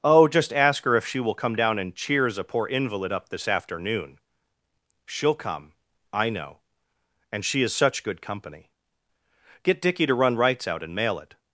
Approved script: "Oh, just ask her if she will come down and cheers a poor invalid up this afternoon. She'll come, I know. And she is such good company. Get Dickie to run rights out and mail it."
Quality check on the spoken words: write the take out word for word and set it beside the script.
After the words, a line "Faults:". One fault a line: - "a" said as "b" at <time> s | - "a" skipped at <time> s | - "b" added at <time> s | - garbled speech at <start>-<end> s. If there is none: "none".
"Oh, just ask her if she will come down and cheers a poor invalid up this afternoon. She'll come, I know. And she is such good company. Get Dickie to run rights out and mail it."
Faults:
none